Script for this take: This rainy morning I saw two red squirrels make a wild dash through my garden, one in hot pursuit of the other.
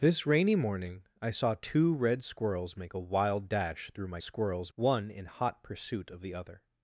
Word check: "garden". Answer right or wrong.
wrong